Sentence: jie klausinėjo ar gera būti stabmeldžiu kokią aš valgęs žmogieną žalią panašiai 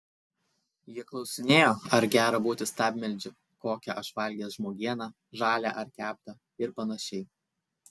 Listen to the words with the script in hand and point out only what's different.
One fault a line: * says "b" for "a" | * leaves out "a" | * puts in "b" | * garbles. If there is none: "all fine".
* puts in "ar keptą ir"